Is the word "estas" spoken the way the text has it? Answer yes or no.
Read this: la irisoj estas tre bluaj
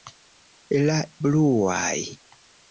no